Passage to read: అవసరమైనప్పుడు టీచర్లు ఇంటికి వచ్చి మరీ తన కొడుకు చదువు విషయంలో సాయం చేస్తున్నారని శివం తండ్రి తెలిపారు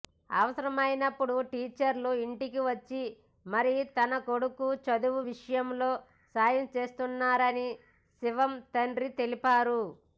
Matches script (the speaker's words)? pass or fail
pass